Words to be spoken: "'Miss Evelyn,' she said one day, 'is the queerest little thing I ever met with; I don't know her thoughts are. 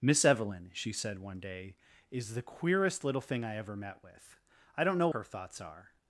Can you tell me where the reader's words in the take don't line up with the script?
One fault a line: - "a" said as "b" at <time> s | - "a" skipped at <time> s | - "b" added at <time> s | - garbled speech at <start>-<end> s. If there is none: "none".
none